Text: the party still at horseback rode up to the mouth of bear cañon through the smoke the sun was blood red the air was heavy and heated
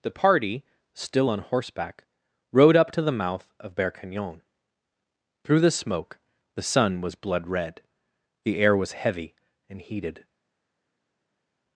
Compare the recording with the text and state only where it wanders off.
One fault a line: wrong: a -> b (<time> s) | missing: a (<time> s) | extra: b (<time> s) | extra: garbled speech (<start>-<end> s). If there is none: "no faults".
wrong: at -> on (1.3 s)